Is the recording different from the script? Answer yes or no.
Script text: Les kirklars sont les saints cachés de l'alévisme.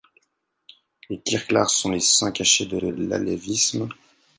yes